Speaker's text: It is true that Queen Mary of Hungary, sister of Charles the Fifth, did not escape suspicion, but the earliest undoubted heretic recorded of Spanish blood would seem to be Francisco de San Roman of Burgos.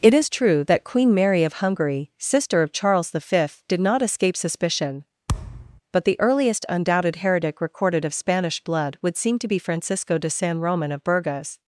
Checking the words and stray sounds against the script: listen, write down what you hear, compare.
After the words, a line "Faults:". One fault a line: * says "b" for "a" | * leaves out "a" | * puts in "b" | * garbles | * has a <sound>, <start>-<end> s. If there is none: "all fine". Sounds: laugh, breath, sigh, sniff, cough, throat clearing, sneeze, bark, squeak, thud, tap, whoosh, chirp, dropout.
It is true that Queen Mary of Hungary, sister of Charles the Fifth, did not escape suspicion, but the earliest undoubted heretic recorded of Spanish blood would seem to be Francisco de San Roman of Burgos.
Faults:
* has a thud, 5.3-5.8 s